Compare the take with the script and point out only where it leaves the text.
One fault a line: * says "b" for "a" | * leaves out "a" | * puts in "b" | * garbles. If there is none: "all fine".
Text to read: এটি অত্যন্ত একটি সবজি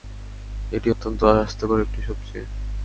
* puts in "স্বাস্থ্যকর"